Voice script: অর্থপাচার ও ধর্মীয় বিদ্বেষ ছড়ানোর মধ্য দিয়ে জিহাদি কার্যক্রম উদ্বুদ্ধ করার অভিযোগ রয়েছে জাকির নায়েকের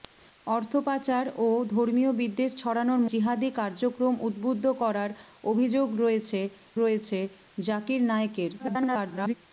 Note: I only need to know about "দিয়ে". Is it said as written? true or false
false